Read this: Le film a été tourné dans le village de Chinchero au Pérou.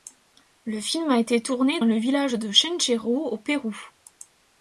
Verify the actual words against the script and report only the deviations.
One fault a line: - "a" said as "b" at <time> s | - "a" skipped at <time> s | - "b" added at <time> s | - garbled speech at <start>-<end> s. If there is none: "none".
- "dans" skipped at 1.8 s